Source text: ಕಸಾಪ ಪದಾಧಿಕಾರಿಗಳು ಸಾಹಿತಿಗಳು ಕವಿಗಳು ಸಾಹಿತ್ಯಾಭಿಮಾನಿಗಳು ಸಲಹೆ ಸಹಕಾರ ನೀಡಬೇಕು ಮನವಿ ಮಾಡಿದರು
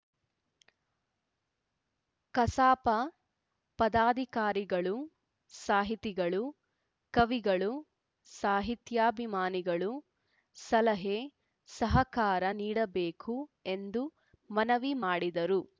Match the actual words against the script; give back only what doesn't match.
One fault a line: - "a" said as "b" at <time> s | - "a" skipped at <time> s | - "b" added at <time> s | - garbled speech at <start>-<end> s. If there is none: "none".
- "ಎಂದು" added at 13.7 s